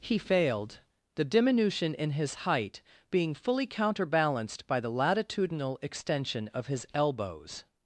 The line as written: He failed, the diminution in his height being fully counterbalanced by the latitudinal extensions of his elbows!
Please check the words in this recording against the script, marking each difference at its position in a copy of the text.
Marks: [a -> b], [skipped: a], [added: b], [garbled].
He failed, the diminution in his height being fully counterbalanced by the latitudinal [extensions -> extension] of his elbows!